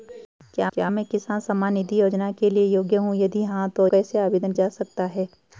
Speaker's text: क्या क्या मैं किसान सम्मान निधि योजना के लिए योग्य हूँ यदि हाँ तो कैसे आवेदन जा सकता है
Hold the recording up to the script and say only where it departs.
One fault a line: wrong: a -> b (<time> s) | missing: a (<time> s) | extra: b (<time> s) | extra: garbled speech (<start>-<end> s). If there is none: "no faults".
no faults